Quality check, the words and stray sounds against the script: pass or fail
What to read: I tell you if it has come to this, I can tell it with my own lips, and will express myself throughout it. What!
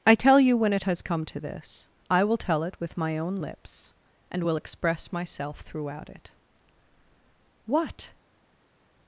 fail